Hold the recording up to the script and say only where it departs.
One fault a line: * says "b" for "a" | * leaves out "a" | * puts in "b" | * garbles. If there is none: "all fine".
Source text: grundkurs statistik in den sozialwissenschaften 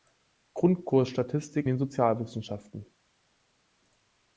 * leaves out "in"